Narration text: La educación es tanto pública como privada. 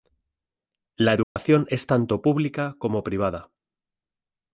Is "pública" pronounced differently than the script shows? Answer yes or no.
no